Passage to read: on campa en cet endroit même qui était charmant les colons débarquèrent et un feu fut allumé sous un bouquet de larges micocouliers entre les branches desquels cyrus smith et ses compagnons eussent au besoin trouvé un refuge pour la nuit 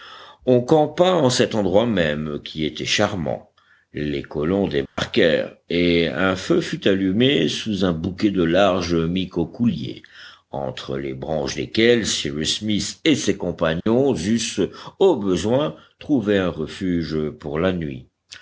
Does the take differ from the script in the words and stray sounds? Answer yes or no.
yes